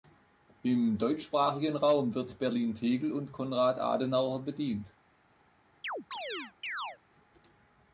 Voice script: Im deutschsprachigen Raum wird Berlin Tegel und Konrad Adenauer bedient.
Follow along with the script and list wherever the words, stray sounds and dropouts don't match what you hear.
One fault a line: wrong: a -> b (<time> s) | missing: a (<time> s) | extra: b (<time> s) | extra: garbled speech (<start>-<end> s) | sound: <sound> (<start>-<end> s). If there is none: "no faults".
sound: chirp (5.8-7.0 s)